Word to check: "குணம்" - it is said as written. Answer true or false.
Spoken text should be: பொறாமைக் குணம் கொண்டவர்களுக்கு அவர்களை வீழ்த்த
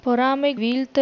false